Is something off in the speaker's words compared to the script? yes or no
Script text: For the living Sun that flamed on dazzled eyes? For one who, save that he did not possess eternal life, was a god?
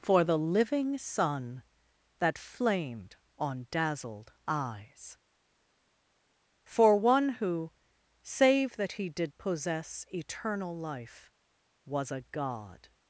yes